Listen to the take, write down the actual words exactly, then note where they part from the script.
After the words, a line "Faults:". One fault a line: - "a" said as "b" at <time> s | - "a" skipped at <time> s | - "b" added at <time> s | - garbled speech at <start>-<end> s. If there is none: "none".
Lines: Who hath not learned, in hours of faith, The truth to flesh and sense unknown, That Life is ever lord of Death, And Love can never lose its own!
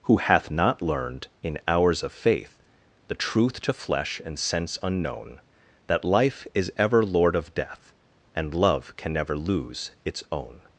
Who hath not learned, in hours of faith, The truth to flesh and sense unknown, That Life is ever lord of Death, And Love can never lose its own!
Faults:
none